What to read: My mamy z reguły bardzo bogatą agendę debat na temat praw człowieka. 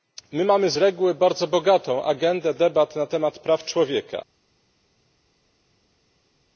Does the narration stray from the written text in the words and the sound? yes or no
no